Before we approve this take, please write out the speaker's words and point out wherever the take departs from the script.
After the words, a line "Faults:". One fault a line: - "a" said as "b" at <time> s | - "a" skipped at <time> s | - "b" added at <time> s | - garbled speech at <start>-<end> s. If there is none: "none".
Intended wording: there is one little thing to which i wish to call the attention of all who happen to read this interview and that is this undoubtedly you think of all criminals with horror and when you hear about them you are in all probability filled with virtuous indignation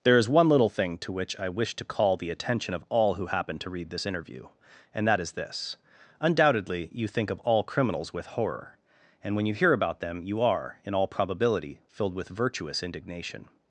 there is one little thing to which i wish to call the attention of all who happen to read this interview and that is this undoubtedly you think of all criminals with horror and when you hear about them you are in all probability filled with virtuous indignation
Faults:
none